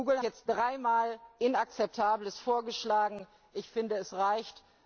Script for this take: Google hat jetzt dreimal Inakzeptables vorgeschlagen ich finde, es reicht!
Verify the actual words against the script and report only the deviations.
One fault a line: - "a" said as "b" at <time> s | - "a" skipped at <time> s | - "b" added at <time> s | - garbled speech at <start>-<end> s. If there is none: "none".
- "hat" skipped at 0.2 s